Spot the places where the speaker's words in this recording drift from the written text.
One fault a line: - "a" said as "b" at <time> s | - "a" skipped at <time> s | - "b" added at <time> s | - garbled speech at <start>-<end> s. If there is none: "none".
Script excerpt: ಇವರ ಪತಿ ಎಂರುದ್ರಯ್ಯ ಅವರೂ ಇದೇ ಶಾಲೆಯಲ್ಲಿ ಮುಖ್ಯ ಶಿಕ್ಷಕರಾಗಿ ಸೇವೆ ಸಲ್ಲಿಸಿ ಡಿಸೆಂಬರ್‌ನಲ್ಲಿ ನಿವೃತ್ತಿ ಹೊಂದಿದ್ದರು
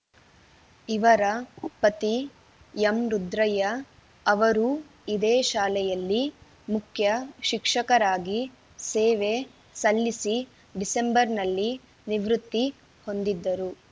none